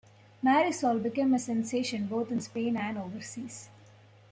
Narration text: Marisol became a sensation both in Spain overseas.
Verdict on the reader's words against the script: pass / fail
fail